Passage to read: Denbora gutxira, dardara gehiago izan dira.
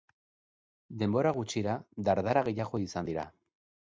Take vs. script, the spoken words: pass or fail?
pass